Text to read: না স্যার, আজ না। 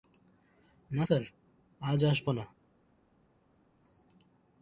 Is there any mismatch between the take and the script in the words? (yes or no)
yes